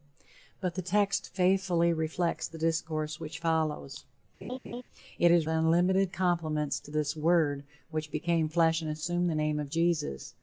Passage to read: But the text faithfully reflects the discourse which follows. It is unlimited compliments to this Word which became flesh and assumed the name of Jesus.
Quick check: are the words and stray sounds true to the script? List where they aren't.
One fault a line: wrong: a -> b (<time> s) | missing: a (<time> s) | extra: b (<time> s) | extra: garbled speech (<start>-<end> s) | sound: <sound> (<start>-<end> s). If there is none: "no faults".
sound: laugh (4.4-4.8 s)